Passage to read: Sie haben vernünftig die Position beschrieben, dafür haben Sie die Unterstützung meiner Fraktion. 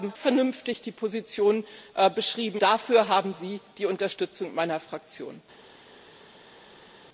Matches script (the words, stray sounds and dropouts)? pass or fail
pass